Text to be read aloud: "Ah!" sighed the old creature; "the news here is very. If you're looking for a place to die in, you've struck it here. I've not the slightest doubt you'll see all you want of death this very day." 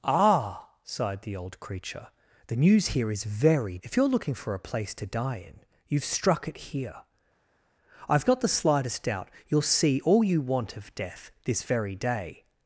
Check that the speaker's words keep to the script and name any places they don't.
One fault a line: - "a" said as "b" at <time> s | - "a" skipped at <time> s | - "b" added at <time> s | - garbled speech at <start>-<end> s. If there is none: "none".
none